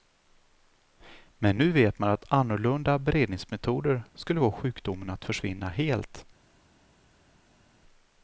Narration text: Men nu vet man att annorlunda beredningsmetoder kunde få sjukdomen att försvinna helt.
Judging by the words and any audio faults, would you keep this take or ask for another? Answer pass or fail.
fail